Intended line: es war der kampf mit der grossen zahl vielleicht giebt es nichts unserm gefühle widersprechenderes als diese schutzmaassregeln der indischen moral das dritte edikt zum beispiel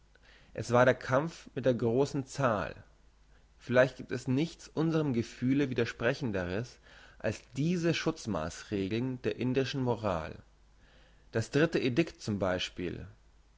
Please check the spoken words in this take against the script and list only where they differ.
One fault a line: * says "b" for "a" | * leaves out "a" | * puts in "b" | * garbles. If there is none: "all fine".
all fine